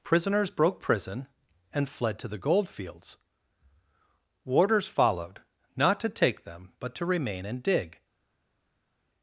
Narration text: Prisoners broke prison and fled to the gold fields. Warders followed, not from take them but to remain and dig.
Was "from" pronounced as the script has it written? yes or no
no